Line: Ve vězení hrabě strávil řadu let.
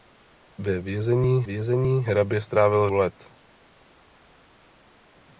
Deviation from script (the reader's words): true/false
true